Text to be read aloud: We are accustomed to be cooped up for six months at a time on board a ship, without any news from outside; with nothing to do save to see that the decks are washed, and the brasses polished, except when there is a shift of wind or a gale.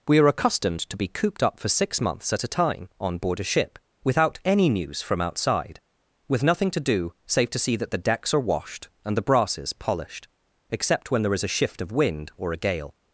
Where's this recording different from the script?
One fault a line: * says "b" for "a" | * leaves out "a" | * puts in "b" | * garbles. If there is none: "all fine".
all fine